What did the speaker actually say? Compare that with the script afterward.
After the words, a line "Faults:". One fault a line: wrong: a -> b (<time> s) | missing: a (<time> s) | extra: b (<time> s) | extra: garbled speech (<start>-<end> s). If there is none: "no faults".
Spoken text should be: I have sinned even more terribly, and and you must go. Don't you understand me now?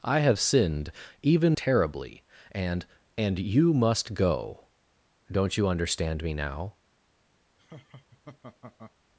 I have sinned even terribly, and and you must go. Don't you understand me now?
Faults:
missing: more (1.6 s)